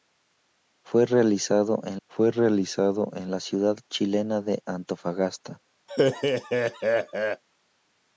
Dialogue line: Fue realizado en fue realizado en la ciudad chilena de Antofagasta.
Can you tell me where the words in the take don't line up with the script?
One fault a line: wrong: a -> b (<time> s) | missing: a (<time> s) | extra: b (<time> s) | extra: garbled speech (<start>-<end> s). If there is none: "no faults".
no faults